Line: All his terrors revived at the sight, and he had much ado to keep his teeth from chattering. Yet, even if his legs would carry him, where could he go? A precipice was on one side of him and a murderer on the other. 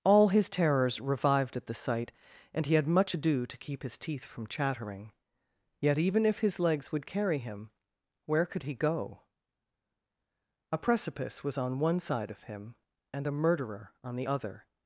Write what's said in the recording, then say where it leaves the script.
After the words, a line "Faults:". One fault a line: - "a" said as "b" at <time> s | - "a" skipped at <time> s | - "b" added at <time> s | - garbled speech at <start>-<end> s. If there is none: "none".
All his terrors revived at the sight, and he had much ado to keep his teeth from chattering. Yet, even if his legs would carry him, where could he go? A precipice was on one side of him and a murderer on the other.
Faults:
none